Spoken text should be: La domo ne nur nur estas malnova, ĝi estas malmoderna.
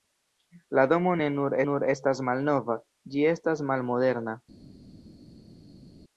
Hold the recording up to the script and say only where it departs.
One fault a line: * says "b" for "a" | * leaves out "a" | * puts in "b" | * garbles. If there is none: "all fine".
all fine